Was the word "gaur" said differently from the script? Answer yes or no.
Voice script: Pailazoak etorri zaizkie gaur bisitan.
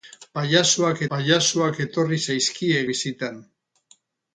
yes